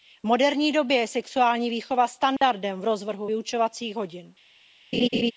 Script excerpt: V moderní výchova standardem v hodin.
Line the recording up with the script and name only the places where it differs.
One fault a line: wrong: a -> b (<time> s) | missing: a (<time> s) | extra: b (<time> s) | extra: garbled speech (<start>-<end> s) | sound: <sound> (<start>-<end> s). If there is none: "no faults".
extra: době je sexuální (0.7 s)
sound: dropout (2.4-2.4 s)
extra: rozvrhu vyučovacích (2.8 s)
sound: laugh (4.9-5.3 s)